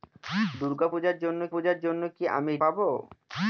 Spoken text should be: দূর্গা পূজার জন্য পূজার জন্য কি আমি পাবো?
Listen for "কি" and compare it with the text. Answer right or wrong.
right